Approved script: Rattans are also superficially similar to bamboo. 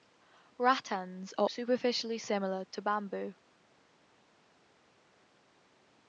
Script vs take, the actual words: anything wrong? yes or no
yes